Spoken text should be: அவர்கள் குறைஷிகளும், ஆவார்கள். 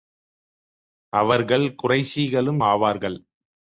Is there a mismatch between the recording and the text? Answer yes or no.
no